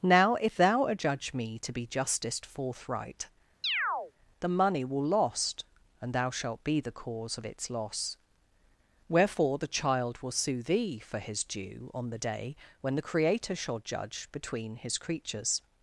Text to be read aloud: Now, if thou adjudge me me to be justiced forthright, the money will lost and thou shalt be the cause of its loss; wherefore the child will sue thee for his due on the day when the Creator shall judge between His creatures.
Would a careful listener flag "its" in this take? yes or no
no